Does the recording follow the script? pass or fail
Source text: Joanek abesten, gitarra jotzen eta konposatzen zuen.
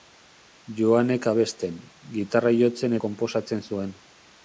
fail